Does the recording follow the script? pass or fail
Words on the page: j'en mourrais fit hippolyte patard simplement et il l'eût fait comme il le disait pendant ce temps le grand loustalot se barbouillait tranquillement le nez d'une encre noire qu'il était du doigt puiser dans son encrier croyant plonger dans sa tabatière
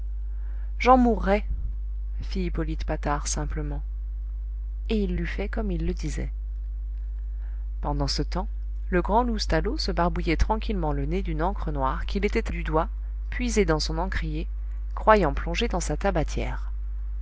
pass